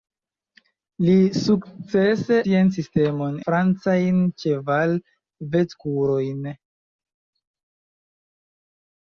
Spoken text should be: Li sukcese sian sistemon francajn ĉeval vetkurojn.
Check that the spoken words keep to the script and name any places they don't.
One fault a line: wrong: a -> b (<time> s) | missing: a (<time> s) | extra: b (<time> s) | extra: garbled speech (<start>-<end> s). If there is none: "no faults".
no faults